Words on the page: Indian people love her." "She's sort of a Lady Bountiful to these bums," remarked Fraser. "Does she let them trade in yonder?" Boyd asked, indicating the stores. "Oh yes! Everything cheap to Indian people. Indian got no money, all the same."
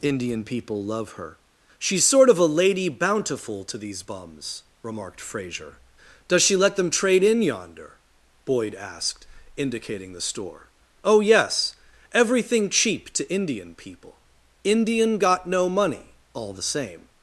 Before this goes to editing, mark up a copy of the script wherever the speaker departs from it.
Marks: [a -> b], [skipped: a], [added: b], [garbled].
Indian people love her." "She's sort of a Lady Bountiful to these bums," remarked Fraser. "Does she let them trade in yonder?" Boyd asked, indicating the [stores. -> store] "Oh yes! Everything cheap to Indian people. Indian got no money, all the same."